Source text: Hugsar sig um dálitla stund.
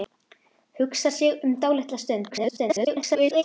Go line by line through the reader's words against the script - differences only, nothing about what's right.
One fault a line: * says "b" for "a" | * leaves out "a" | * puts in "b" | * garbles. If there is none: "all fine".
* garbles